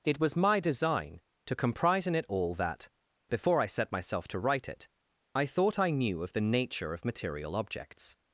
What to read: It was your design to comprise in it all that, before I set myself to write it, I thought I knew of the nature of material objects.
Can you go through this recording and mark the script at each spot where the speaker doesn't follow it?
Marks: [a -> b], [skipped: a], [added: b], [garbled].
It was [your -> my] design to comprise in it all that, before I set myself to write it, I thought I knew of the nature of material objects.